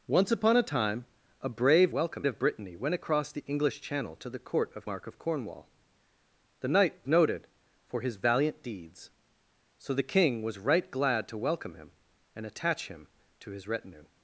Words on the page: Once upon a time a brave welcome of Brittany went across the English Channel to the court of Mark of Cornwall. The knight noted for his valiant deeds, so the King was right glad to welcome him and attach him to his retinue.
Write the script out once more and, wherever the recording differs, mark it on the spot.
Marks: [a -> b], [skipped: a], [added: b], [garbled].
Once upon a time a brave welcome of Brittany went across the English Channel to the court of Mark of Cornwall. The knight noted for his valiant deeds, so the King was right glad to welcome him and attach him to his retinue.